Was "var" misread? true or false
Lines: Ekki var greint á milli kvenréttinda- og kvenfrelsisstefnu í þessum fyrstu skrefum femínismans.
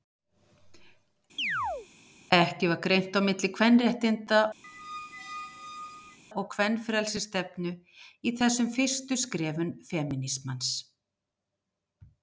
false